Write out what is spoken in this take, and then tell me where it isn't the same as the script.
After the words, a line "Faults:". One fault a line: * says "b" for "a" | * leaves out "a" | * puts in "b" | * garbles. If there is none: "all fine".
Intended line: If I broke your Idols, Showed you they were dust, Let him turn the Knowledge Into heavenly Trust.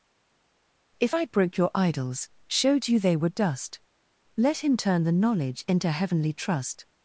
If I broke your Idols, Showed you they were dust, Let him turn the Knowledge Into heavenly Trust.
Faults:
all fine